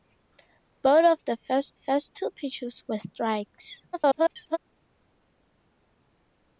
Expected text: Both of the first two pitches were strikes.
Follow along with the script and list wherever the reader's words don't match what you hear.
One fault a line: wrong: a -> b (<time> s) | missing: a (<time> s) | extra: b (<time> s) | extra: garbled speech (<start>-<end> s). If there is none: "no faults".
extra: first (1.7 s)
extra: garbled speech (3.9-4.6 s)